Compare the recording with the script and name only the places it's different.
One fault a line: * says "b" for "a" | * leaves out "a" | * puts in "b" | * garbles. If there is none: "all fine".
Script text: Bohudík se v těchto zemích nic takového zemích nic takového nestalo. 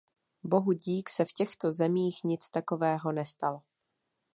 * leaves out "zemích nic takového"